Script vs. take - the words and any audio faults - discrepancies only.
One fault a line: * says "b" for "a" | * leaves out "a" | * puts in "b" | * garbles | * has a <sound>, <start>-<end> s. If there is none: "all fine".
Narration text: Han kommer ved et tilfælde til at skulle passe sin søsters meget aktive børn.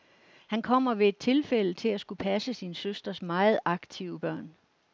all fine